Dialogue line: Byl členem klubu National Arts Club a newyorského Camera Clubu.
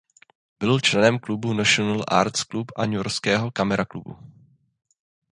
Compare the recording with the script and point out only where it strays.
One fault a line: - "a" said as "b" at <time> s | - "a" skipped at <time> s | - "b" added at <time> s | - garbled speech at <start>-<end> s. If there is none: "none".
none